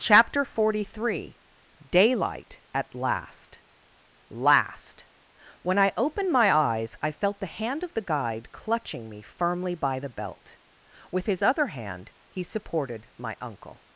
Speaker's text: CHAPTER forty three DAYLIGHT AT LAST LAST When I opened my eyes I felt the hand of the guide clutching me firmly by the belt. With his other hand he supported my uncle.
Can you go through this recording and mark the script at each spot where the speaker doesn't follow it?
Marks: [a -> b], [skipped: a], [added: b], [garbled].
CHAPTER forty three DAYLIGHT AT LAST LAST When I opened my eyes I felt the hand of the guide clutching me firmly by the belt. With his other hand he supported my uncle.